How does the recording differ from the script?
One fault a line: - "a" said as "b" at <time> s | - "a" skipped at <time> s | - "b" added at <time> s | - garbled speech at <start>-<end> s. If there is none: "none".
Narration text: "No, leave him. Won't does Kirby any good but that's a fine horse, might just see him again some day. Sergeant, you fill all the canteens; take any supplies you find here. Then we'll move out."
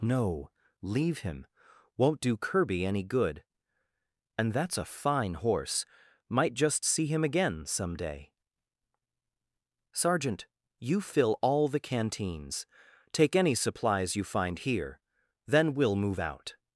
- "does" said as "do" at 2.2 s
- "but" said as "and" at 4.4 s